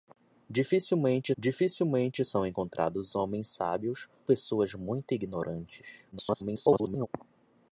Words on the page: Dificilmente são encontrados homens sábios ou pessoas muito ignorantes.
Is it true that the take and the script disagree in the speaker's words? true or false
true